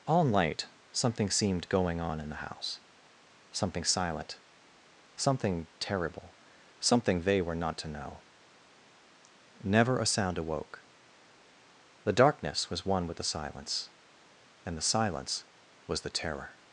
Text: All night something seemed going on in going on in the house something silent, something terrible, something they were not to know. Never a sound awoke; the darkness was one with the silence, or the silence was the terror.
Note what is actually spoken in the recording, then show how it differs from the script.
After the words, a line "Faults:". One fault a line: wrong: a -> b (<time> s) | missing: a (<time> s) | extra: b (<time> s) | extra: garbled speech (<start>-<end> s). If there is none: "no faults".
All night something seemed going on in the house something silent, something terrible, something they were not to know. Never a sound awoke; the darkness was one with the silence, and the silence was the terror.
Faults:
missing: going on in (2.3 s)
wrong: or -> and (14.6 s)